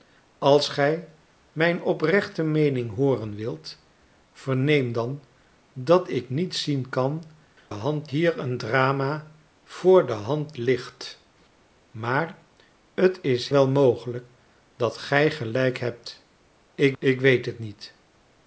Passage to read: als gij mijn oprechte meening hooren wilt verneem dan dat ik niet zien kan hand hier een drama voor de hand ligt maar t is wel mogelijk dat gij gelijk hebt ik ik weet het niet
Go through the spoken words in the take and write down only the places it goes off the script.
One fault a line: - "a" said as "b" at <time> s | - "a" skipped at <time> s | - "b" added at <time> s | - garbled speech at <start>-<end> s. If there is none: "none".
none